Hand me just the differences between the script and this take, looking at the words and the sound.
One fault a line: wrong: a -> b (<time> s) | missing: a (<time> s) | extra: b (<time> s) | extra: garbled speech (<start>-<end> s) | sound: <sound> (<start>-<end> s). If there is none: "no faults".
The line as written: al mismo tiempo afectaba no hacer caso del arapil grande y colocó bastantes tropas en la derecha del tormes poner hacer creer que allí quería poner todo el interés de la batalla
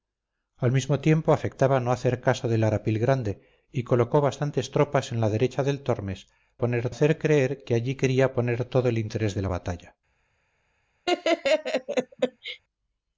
sound: laugh (11.1-12.6 s)